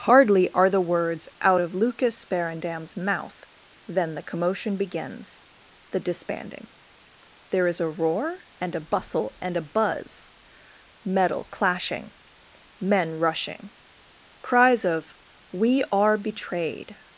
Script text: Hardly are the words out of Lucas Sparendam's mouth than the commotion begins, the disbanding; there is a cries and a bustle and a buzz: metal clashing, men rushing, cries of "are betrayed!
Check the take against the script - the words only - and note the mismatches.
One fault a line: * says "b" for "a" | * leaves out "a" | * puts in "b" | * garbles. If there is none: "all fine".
* says "roar" for "cries"
* puts in "we"